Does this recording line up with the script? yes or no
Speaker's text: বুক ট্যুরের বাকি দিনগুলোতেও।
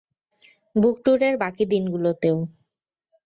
yes